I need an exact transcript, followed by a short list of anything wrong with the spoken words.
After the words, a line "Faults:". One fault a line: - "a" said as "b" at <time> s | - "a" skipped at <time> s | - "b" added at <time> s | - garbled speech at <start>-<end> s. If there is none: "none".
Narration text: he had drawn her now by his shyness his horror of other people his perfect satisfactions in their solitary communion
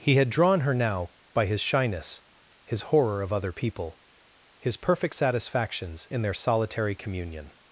he had drawn her now by his shyness his horror of other people his perfect satisfactions in their solitary communion
Faults:
none